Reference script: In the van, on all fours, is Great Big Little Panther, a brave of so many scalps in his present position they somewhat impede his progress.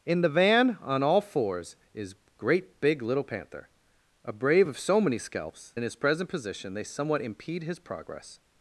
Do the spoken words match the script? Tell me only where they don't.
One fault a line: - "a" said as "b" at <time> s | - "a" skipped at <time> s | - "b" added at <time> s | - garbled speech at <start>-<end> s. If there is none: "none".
none